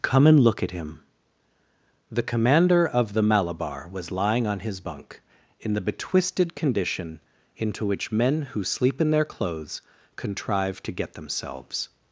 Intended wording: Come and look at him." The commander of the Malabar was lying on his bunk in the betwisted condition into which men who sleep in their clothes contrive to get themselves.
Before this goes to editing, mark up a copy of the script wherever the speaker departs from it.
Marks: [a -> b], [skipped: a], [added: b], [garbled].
Come and look at him." The commander of the Malabar was lying on his bunk in the betwisted condition into which men who sleep in their clothes contrive to get themselves.